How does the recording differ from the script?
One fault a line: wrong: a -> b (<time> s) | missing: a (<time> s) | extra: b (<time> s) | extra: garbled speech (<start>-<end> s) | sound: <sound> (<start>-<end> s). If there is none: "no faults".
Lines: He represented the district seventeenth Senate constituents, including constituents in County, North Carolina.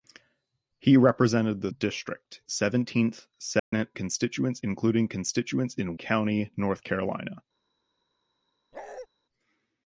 sound: dropout (3.6-3.7 s)
sound: bark (8.7-9.1 s)